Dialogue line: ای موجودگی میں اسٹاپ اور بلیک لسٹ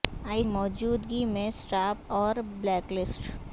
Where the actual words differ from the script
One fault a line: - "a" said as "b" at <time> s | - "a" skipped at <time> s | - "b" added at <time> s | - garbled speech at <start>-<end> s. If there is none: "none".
none